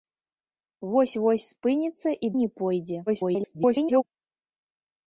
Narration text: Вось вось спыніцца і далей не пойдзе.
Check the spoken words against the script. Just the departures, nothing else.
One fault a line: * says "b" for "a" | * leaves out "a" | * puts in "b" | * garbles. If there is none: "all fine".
* leaves out "далей"
* garbles